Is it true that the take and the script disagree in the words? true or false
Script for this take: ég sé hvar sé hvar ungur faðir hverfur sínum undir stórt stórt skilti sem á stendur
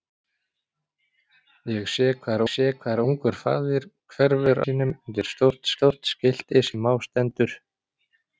false